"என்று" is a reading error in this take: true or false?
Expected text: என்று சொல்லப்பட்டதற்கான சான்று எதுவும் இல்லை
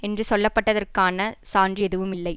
false